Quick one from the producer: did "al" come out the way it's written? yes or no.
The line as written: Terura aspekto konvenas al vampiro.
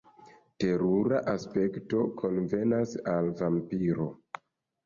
yes